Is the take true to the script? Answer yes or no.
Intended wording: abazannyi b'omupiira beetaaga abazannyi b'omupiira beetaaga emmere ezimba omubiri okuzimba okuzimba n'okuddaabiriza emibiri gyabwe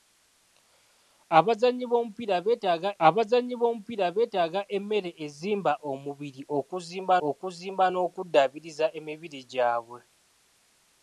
yes